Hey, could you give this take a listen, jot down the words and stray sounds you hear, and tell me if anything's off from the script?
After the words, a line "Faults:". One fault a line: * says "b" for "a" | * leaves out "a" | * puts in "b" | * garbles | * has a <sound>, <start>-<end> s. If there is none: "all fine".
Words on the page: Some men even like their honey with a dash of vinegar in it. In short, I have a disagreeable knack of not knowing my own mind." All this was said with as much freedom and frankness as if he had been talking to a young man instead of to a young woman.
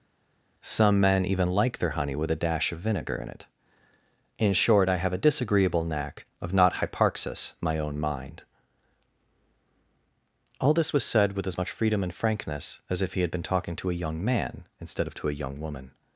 Some men even like their honey with a dash of vinegar in it. In short, I have a disagreeable knack of not hyparxis my own mind." All this was said with as much freedom and frankness as if he had been talking to a young man instead of to a young woman.
Faults:
* says "hyparxis" for "knowing"